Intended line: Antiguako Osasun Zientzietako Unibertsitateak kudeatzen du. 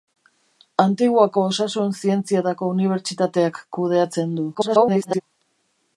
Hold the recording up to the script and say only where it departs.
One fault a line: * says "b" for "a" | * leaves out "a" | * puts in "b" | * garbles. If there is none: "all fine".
* garbles